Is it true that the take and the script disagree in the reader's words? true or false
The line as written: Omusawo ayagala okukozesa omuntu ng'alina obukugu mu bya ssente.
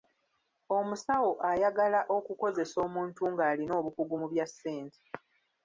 false